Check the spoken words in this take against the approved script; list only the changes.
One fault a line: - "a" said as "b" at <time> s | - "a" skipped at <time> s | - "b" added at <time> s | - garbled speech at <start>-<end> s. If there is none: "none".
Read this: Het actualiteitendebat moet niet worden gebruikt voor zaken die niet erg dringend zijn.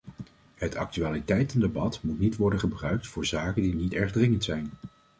none